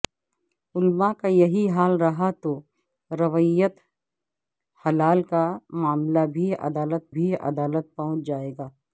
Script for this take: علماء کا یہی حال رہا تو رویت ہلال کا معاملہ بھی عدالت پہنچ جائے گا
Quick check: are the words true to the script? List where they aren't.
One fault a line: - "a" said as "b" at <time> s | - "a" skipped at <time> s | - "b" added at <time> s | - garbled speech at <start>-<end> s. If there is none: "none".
- "بھی عدالت" added at 7.1 s